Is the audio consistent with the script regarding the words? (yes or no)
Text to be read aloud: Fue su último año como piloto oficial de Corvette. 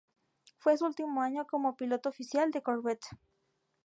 yes